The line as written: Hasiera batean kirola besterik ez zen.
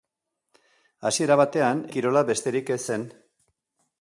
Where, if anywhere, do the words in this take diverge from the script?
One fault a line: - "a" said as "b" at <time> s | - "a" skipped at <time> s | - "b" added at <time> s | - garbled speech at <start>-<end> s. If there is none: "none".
none